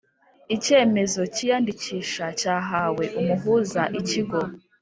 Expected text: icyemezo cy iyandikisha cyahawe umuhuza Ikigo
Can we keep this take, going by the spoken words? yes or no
yes